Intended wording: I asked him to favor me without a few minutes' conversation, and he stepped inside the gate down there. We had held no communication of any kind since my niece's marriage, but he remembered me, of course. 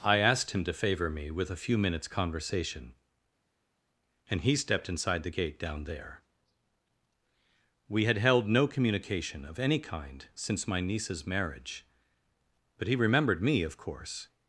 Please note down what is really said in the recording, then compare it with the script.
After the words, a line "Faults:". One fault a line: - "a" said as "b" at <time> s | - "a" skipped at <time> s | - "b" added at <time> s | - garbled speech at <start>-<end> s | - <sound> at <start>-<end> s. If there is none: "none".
I asked him to favor me with a few minutes' conversation, and he stepped inside the gate down there. We had held no communication of any kind since my niece's marriage, but he remembered me, of course.
Faults:
- "without" said as "with" at 1.3 s